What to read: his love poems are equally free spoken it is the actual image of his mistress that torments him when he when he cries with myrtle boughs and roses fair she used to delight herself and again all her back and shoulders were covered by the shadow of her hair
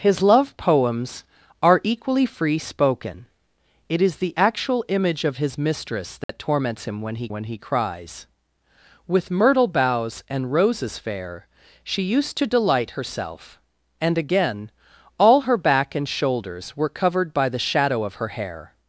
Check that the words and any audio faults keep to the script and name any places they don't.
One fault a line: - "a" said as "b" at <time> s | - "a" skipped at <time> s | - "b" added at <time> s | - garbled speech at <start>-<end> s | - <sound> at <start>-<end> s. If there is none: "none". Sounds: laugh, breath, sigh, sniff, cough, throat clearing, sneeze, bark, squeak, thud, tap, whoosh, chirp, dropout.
- dropout at 6.2-6.3 s